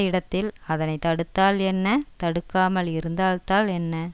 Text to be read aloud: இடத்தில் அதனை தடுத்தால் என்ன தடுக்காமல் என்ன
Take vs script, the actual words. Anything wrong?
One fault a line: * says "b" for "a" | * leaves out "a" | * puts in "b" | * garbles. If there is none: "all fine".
* puts in "இருந்தால்தான்"